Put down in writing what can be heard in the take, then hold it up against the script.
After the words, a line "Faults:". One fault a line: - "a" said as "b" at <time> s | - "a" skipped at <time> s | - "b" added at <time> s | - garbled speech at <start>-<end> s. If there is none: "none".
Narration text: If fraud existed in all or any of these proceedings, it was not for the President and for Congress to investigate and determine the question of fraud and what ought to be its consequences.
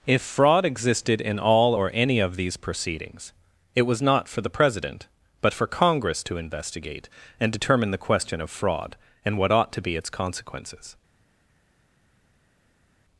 If fraud existed in all or any of these proceedings, it was not for the President but for Congress to investigate and determine the question of fraud and what ought to be its consequences.
Faults:
- "and" said as "but" at 5.4 s